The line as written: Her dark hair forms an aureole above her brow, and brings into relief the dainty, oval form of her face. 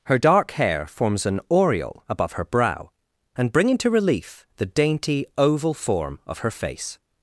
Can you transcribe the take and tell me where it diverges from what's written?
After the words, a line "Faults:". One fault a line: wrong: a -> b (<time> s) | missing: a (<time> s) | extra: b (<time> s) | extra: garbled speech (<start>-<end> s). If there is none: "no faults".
Her dark hair forms an aureole above her brow, and bring into relief the dainty, oval form of her face.
Faults:
wrong: brings -> bring (3.5 s)